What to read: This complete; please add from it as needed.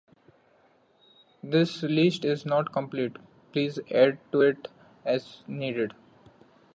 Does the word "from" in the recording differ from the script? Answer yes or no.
yes